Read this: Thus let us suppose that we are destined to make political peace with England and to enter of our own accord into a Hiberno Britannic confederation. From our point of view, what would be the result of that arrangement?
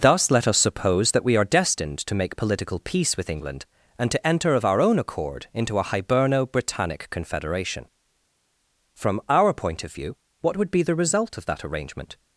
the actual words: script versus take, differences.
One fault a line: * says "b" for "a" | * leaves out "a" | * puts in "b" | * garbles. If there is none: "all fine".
all fine